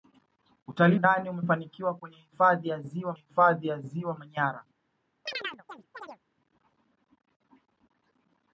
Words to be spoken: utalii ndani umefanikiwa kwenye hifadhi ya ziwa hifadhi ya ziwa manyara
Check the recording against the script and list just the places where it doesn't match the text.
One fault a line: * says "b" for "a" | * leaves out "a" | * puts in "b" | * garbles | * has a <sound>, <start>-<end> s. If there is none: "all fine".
* has a chirp, 5.3-6.2 s